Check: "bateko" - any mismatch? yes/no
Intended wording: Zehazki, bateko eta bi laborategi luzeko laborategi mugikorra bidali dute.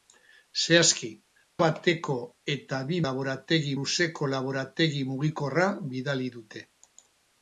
no